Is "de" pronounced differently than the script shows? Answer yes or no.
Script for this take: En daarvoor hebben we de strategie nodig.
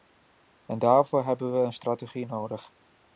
yes